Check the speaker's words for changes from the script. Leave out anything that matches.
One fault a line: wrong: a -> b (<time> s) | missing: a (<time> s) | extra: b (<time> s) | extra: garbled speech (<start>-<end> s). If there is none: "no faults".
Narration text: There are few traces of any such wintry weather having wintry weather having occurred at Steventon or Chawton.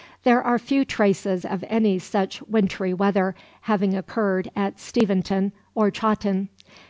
missing: wintry weather having (3.9 s)